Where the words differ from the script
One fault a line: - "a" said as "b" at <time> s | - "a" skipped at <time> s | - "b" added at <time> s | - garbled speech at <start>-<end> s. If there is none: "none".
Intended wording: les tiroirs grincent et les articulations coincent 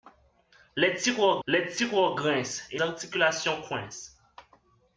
- "les tiroirs" added at 1.5 s
- "les" skipped at 2.8 s